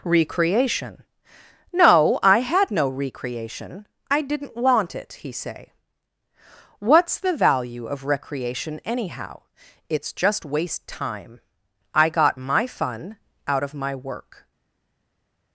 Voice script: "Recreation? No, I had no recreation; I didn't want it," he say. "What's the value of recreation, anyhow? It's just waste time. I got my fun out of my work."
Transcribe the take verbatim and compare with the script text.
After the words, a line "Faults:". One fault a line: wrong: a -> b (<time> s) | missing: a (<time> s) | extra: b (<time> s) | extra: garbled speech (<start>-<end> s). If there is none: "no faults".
"Recreation? No, I had no recreation; I didn't want it," he say. "What's the value of recreation, anyhow? It's just waste time. I got my fun out of my work."
Faults:
no faults